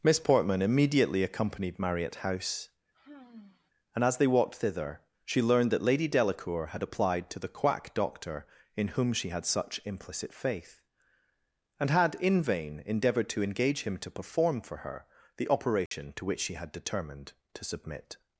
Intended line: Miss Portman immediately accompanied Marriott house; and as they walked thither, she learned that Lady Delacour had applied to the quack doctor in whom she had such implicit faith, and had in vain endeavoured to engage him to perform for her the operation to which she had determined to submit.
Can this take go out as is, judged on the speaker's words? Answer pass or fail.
pass